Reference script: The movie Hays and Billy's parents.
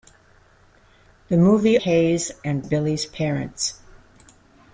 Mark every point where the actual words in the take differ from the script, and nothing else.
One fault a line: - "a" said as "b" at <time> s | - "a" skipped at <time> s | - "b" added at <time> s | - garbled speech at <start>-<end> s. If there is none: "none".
none